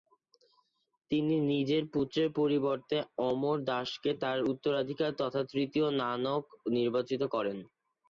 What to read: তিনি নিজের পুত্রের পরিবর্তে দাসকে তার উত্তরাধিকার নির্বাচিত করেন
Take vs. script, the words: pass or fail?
fail